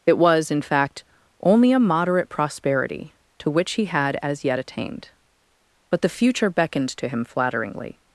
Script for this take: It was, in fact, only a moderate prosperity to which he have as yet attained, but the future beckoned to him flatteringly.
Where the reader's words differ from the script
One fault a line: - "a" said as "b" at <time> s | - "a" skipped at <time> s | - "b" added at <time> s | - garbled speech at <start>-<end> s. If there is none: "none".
- "have" said as "had" at 3.9 s